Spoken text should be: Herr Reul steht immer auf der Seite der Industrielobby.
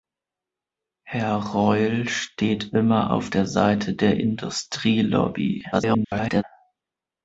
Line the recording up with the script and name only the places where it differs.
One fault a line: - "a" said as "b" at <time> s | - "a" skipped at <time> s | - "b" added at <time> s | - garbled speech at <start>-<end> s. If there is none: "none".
- garbled speech at 5.7-6.4 s